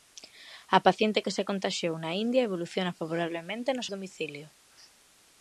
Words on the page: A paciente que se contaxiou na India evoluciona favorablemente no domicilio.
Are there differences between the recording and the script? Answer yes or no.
no